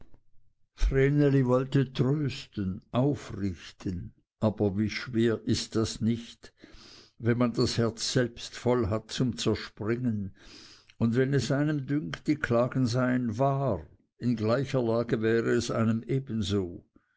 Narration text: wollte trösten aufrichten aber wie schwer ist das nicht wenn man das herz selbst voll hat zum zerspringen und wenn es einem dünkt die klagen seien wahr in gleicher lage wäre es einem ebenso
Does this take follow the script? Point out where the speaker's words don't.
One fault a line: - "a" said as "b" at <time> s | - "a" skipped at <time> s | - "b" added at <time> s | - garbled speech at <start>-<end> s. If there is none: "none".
none